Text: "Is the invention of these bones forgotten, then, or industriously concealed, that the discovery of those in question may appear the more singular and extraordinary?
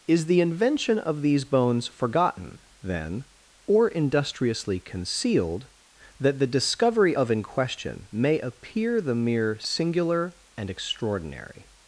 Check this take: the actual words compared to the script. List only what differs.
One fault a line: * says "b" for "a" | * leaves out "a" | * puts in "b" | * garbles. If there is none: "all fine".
* leaves out "those"
* says "mere" for "more"